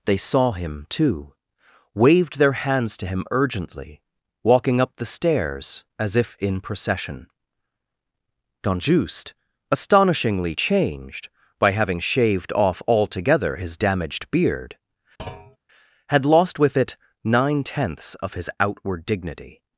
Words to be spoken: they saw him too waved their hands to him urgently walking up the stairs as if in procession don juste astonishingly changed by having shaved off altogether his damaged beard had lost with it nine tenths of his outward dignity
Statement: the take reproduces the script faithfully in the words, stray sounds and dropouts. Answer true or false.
false